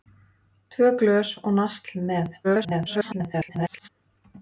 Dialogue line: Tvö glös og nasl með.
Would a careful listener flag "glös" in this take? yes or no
no